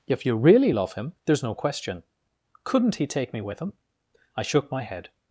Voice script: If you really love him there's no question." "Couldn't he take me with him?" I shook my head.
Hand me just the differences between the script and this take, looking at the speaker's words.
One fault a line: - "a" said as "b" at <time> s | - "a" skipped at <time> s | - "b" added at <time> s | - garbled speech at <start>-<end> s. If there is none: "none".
none